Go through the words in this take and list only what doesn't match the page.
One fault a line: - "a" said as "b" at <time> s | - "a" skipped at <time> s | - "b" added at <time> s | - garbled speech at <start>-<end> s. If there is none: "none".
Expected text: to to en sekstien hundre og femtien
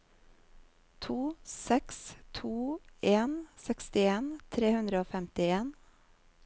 - "seks" added at 1.4 s
- "tre" added at 4.6 s